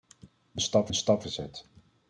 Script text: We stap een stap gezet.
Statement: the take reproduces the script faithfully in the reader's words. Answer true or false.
true